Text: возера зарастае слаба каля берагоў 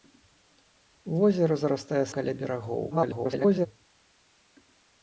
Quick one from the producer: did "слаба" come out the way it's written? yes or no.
no